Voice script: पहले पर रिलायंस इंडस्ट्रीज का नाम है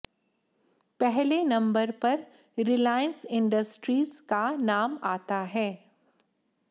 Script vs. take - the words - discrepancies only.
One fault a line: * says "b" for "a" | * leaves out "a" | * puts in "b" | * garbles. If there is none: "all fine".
* puts in "नंबर"
* puts in "आता"